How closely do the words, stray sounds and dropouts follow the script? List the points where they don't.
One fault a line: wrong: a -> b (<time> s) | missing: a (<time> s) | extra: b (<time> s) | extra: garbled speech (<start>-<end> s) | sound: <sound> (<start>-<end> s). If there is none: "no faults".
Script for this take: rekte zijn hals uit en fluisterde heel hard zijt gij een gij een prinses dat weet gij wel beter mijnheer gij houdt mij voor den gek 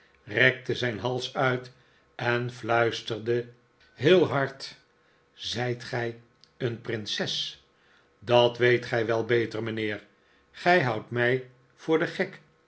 missing: gij een (6.8 s)